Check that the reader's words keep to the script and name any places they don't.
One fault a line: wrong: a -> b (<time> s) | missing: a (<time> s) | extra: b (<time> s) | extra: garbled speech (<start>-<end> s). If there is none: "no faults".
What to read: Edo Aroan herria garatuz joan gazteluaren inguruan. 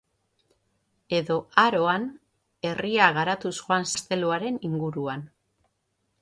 no faults